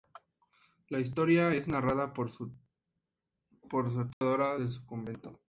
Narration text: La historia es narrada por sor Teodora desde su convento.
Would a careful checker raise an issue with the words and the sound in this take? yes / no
yes